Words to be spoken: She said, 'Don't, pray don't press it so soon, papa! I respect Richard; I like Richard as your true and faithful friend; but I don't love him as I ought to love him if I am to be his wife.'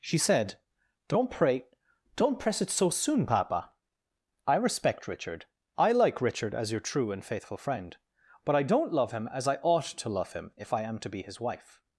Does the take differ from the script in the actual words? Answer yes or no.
no